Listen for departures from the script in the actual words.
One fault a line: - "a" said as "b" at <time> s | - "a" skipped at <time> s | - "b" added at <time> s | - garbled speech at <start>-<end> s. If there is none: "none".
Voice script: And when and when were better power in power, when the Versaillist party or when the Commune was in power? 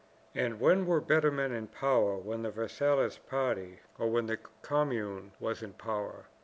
- "and when" skipped at 0.9 s
- "power" said as "men" at 1.3 s